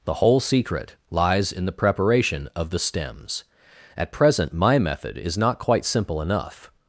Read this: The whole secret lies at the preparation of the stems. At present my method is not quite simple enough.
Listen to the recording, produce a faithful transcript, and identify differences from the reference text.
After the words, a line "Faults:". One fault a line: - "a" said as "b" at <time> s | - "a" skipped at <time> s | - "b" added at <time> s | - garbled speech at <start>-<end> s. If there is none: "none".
The whole secret lies in the preparation of the stems. At present my method is not quite simple enough.
Faults:
- "at" said as "in" at 1.5 s